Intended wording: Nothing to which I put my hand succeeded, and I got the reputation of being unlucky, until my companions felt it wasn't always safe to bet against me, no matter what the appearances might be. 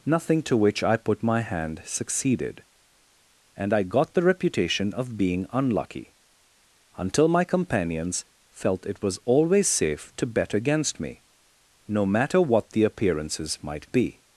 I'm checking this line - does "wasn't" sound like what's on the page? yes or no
no